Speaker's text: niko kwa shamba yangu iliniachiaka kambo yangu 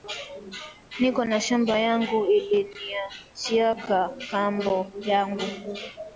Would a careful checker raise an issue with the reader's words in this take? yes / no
yes